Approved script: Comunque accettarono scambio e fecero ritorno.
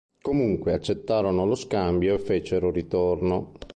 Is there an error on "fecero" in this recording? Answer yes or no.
no